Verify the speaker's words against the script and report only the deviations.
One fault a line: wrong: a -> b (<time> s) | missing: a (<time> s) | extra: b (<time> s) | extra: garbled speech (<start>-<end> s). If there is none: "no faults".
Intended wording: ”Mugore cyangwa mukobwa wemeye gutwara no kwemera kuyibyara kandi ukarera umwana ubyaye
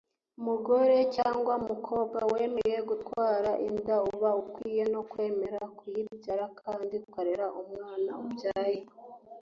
extra: inda uba ukwiye (3.7 s)